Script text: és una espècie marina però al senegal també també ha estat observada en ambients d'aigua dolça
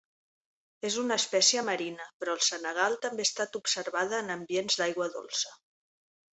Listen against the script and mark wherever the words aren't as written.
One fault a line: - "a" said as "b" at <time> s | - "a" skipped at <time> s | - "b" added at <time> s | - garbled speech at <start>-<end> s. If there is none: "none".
- "també" skipped at 3.3 s